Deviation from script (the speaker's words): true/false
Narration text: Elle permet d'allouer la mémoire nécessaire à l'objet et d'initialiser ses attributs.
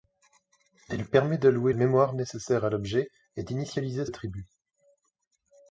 true